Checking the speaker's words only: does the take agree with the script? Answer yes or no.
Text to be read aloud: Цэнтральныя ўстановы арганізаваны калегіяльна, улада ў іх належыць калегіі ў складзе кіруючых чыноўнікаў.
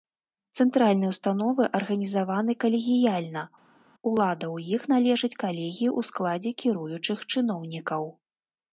yes